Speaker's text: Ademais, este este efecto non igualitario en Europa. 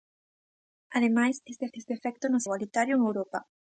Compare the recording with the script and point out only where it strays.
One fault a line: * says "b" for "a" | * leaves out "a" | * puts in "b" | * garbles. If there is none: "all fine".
all fine